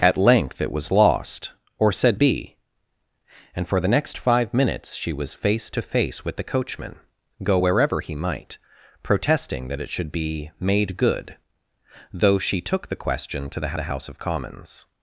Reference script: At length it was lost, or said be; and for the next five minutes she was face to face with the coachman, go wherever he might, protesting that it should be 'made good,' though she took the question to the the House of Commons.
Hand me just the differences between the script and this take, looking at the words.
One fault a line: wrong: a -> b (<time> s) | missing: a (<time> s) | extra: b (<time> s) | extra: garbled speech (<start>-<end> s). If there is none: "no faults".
no faults